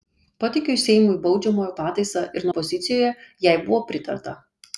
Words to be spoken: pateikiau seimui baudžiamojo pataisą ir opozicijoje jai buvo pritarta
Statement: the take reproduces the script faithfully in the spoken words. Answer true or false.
true